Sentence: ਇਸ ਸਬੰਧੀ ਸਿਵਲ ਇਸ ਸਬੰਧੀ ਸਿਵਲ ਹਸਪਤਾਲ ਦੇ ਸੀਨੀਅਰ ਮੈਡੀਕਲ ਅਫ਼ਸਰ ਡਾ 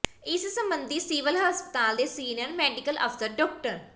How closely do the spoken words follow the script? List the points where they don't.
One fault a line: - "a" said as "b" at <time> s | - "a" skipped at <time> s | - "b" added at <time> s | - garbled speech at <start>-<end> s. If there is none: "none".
- "ਇਸ ਸਬੰਧੀ ਸਿਵਲ" skipped at 1.4 s